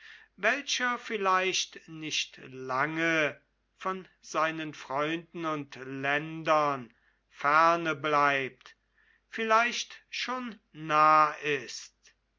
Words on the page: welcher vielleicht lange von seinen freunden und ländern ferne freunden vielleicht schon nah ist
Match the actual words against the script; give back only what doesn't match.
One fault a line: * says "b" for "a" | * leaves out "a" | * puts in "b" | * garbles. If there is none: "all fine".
* puts in "nicht"
* says "bleibt" for "freunden"